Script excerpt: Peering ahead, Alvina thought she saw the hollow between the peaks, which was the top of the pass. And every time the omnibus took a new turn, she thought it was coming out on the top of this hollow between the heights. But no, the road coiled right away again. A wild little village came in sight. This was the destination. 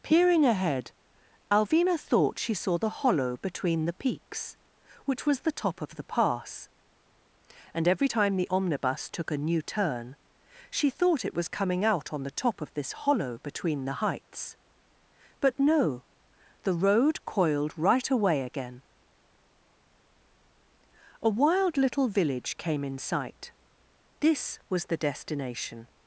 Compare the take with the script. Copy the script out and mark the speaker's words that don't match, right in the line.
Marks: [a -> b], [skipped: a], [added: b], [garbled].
Peering ahead, Alvina thought she saw the hollow between the peaks, which was the top of the pass. And every time the omnibus took a new turn, she thought it was coming out on the top of this hollow between the heights. But no, the road coiled right away again. A wild little village came in sight. This was the destination.